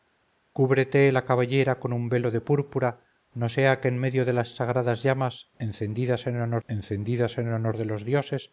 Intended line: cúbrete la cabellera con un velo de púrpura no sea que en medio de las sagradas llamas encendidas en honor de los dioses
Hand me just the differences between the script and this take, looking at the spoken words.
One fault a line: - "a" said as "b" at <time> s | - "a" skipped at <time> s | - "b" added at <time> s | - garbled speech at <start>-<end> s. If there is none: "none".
- "encendidas en honor" added at 6.7 s